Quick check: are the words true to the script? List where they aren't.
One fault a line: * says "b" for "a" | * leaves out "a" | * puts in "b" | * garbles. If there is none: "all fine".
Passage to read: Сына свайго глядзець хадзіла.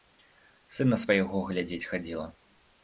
all fine